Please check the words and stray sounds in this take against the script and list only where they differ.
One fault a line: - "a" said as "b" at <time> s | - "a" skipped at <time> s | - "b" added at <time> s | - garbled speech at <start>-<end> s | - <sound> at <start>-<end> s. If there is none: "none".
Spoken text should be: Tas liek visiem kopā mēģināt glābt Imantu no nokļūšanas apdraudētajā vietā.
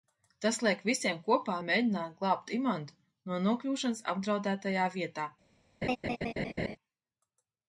- laugh at 5.8-6.8 s